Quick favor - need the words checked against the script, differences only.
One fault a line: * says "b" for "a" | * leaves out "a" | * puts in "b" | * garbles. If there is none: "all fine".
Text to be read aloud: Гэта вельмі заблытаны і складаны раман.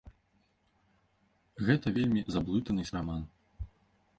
* leaves out "складаны"